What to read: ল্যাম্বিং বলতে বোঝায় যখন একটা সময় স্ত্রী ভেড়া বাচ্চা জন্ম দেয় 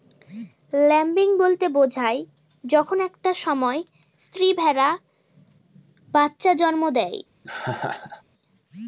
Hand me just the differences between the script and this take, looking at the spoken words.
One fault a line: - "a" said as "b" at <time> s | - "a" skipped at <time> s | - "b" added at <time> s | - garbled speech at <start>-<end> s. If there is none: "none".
none